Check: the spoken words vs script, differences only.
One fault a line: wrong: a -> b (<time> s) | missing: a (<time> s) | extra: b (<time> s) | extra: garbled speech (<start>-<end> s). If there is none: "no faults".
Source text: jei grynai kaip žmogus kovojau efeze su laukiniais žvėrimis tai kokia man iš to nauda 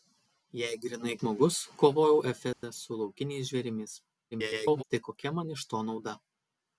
missing: kaip (1.1 s)
extra: garbled speech (4.3-4.8 s)